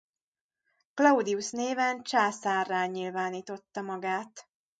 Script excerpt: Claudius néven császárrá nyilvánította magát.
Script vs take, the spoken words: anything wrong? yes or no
no